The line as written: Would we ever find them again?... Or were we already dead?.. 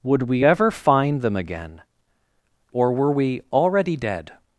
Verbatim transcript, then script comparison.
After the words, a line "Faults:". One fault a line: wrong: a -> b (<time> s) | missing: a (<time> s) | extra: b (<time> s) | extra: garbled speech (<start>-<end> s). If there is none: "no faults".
Would we ever find them again?... Or were we already dead?..
Faults:
no faults